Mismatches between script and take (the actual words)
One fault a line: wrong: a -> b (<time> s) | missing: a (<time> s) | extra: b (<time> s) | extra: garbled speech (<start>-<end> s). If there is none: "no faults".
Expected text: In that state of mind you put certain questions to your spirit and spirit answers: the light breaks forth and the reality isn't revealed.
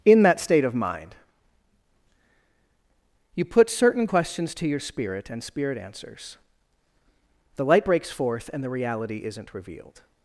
no faults